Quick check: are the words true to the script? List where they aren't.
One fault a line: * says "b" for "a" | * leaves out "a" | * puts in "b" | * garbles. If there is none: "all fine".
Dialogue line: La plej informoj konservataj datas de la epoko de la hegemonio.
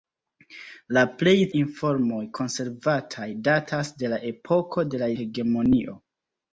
all fine